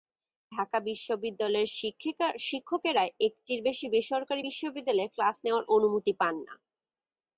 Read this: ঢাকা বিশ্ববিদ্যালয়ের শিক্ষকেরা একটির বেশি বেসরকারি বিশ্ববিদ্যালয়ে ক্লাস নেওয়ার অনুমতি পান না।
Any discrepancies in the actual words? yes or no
no